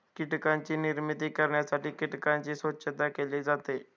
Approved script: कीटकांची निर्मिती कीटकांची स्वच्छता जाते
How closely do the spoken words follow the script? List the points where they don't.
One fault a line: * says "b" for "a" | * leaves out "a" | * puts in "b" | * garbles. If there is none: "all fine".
* puts in "करण्यासाठी"
* puts in "केली"